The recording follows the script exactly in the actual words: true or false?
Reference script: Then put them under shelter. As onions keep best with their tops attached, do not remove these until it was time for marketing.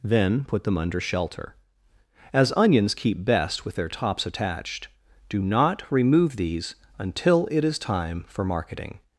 false